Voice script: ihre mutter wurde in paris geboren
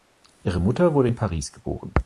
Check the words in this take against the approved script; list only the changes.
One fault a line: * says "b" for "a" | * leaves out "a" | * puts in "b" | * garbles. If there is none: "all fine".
all fine